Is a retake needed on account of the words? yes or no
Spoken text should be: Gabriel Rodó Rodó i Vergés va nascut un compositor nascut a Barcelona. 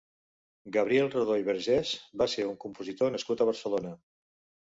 yes